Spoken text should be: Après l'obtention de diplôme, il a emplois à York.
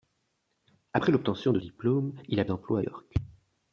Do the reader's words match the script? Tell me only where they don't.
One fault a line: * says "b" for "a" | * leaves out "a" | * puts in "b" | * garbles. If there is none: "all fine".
all fine